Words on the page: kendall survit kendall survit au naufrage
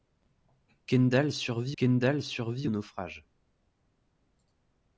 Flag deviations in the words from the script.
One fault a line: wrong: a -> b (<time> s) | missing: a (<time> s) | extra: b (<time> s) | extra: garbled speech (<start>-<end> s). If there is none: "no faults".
no faults